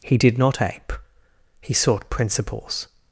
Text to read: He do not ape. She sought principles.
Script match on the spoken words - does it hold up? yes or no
no